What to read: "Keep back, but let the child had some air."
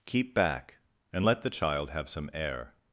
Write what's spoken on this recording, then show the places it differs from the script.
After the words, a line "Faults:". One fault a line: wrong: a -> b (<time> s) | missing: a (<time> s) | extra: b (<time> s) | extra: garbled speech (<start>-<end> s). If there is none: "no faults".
"Keep back, and let the child have some air."
Faults:
wrong: but -> and (1.1 s)
wrong: had -> have (1.9 s)